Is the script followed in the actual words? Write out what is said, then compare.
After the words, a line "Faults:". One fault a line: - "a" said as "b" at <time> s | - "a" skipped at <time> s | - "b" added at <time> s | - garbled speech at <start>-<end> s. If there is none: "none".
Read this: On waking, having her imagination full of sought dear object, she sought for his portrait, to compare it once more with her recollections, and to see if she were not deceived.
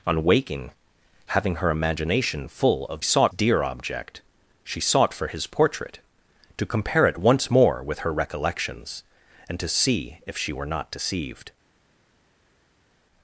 On waking, having her imagination full of sought dear object, she sought for his portrait, to compare it once more with her recollections, and to see if she were not deceived.
Faults:
none